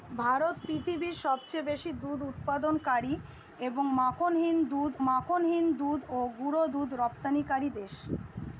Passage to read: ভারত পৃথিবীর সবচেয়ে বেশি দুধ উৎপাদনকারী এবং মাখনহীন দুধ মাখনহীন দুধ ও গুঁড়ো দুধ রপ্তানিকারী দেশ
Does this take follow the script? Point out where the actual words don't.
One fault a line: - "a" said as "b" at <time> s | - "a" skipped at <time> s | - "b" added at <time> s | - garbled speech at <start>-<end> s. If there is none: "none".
none